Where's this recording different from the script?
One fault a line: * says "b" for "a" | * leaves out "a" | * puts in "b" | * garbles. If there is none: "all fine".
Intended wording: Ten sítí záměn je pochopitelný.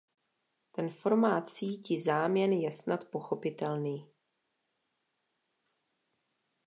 * puts in "formát"
* puts in "snad"